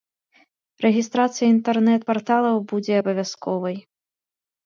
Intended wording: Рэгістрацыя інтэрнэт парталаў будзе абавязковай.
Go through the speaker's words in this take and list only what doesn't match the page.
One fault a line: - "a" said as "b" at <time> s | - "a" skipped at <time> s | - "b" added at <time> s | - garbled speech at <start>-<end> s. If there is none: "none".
none